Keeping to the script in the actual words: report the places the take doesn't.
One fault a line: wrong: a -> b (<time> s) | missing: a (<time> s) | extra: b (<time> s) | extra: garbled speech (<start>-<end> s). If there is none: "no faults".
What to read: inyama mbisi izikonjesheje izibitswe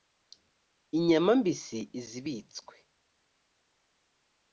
missing: izikonjesheje (1.8 s)